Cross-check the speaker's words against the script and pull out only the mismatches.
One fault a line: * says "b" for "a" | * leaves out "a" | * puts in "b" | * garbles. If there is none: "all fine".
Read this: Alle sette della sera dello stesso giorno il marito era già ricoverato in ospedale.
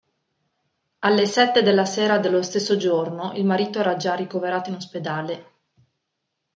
all fine